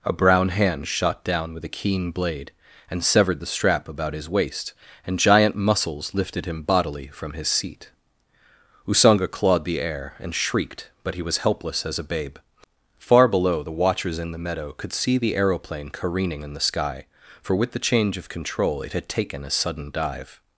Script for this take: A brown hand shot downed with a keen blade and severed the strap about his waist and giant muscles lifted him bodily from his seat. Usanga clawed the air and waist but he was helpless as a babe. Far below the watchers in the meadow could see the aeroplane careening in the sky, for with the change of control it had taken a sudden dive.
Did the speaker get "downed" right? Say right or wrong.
wrong